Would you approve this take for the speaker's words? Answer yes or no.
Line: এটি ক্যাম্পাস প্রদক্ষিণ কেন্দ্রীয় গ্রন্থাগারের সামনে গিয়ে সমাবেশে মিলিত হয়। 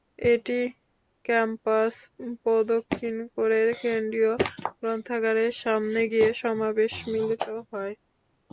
no